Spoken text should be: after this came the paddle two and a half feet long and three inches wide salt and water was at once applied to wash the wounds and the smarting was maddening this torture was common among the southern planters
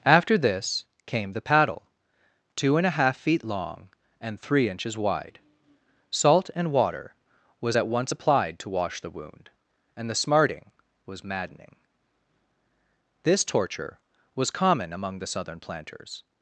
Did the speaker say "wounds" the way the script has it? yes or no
no